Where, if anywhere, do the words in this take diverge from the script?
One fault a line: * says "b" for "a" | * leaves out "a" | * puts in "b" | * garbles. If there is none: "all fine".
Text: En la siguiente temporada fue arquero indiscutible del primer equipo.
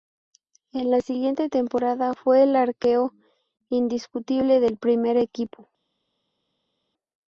* puts in "el"